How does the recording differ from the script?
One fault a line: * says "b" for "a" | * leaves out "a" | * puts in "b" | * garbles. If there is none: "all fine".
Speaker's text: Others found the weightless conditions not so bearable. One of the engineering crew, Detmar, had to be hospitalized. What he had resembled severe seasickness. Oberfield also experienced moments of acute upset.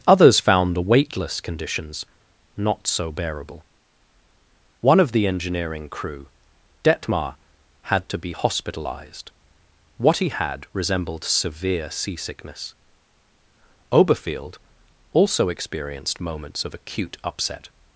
all fine